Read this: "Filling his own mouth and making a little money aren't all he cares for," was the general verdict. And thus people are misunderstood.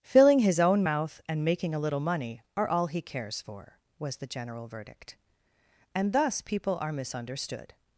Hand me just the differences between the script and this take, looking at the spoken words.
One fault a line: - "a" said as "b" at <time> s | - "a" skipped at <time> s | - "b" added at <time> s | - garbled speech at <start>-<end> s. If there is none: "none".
- "aren't" said as "are" at 2.6 s